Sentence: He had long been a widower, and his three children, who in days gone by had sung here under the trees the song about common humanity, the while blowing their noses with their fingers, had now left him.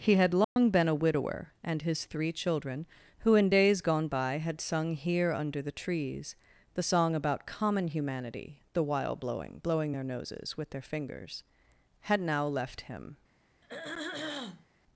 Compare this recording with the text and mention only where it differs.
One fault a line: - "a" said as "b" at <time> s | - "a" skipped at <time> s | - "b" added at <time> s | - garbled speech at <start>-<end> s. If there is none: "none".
- "blowing" added at 9.6 s